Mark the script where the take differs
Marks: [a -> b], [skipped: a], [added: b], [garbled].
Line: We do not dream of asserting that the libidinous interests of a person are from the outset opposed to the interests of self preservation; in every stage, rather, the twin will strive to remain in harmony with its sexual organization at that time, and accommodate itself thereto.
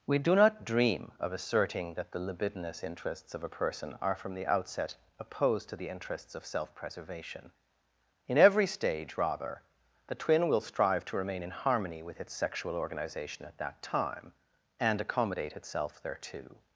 We do not dream of asserting that the libidinous interests of a person are from the outset opposed to the interests of self preservation; in every stage, rather, the twin will strive to remain in harmony with its sexual organization at that time, and accommodate itself thereto.